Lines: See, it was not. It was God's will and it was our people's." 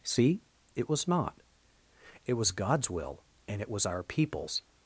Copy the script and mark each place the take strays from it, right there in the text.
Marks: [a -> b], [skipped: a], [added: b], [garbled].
See, it was not. It was God's will and it was our people's."